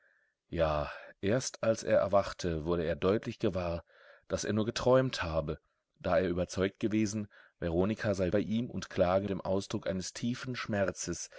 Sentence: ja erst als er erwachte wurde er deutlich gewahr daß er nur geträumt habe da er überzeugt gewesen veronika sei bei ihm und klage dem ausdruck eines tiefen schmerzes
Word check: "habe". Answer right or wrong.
right